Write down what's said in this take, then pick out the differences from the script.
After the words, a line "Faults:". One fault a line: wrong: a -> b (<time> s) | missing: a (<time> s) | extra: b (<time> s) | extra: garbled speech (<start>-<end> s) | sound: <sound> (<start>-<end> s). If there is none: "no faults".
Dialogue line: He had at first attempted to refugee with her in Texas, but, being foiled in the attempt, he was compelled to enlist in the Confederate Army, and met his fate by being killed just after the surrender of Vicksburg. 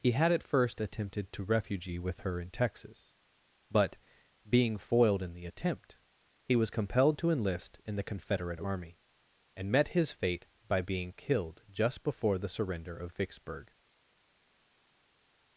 He had at first attempted to refugee with her in Texas, but, being foiled in the attempt, he was compelled to enlist in the Confederate Army, and met his fate by being killed just before the surrender of Vicksburg.
Faults:
wrong: after -> before (12.0 s)